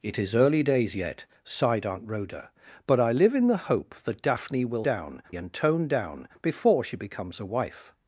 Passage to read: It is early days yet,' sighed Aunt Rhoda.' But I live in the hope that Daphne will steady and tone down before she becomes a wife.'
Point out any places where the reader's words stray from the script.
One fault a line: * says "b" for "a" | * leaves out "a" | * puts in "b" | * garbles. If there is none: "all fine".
* says "down" for "steady"